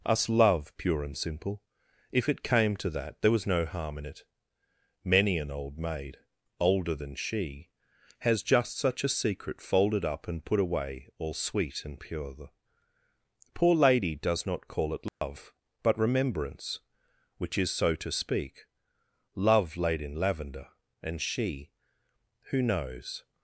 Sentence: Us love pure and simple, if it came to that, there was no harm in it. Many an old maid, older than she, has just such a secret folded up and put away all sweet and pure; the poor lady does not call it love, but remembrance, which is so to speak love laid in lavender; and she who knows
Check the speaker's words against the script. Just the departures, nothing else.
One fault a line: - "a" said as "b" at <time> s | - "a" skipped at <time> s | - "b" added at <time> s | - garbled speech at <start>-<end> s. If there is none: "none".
none